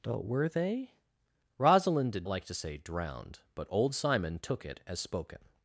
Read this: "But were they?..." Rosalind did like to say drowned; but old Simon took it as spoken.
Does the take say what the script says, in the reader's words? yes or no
yes